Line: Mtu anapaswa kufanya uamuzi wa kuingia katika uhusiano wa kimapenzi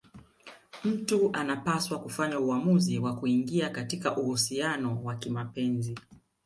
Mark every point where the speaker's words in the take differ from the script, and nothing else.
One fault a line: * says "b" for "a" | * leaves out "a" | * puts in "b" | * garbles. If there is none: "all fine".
all fine